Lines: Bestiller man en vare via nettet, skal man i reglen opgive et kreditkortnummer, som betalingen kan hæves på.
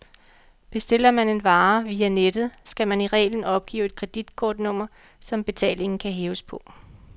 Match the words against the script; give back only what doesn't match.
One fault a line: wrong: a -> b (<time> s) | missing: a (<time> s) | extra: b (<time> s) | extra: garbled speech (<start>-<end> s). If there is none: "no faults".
no faults